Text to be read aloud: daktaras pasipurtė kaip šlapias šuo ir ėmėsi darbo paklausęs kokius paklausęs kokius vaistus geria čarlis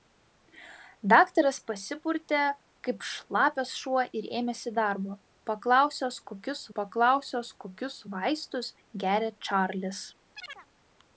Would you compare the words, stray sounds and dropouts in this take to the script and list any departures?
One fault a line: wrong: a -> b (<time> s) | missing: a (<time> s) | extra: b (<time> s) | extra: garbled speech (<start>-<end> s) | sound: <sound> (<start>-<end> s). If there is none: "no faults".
sound: chirp (10.4-10.7 s)